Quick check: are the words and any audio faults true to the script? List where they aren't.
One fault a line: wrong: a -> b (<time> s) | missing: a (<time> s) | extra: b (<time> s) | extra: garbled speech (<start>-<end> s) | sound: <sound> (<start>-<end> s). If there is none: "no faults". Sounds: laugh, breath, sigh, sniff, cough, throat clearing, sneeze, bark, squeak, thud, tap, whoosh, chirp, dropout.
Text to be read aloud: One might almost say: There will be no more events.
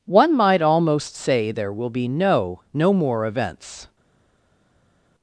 extra: no (2.7 s)